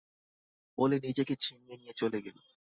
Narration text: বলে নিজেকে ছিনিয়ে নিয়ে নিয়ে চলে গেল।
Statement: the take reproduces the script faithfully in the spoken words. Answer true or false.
false